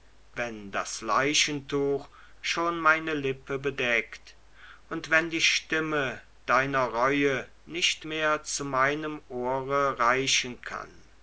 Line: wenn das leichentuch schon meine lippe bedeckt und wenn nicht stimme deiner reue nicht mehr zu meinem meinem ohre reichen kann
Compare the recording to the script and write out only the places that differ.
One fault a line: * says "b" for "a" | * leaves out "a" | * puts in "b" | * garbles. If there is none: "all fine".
* says "die" for "nicht"
* leaves out "meinem"